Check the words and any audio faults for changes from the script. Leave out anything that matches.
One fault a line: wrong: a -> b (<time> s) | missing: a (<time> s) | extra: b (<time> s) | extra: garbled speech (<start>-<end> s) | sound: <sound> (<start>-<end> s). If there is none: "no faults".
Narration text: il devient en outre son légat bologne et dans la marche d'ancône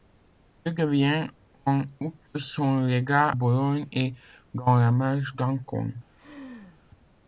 sound: laugh (6.1-6.8 s)